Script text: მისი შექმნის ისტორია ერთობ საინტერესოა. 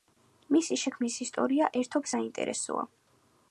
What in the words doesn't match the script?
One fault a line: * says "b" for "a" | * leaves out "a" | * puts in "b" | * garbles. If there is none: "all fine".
all fine